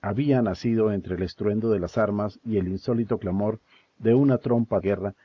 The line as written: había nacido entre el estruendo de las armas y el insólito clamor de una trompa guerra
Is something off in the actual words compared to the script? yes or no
no